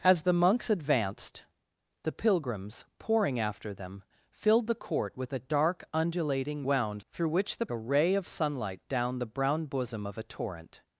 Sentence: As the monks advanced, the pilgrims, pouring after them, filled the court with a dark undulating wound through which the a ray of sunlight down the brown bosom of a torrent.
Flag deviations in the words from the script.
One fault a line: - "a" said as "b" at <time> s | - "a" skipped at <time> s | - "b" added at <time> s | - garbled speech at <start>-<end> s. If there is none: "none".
none